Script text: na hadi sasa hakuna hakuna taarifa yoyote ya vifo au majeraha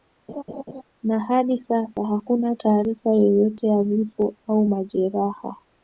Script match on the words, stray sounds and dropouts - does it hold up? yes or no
no